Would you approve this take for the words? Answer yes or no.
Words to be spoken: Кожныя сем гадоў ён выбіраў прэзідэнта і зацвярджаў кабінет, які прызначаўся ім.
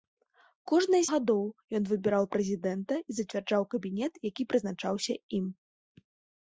no